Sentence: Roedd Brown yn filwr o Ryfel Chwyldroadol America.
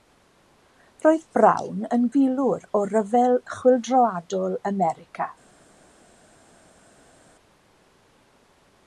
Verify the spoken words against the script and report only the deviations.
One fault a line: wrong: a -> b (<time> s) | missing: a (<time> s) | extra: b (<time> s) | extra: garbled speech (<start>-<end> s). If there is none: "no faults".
no faults